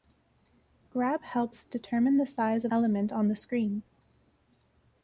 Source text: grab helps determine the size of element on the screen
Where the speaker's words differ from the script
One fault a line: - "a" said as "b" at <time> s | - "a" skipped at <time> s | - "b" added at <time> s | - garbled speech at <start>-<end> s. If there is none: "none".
none